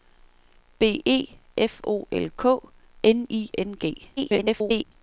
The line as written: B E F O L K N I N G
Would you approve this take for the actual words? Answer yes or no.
no